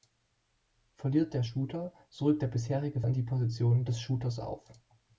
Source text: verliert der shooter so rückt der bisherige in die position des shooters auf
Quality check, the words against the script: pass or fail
pass